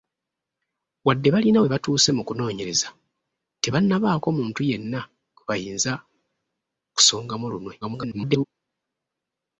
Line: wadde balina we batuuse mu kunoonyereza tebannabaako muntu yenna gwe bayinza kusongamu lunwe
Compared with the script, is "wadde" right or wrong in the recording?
right